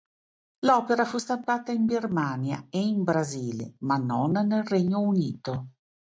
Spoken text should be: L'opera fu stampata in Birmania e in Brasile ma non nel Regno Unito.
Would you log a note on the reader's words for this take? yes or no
no